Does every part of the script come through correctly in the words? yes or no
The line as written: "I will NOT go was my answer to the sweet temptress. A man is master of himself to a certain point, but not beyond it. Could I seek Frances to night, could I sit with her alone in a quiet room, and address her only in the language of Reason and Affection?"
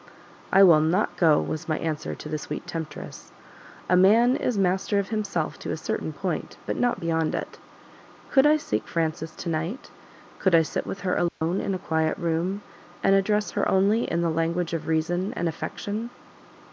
yes